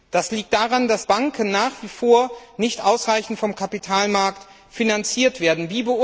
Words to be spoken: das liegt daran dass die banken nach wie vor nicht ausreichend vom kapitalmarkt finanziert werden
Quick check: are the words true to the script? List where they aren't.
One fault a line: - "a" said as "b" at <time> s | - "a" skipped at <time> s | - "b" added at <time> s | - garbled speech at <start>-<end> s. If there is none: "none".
- "die" skipped at 1.1 s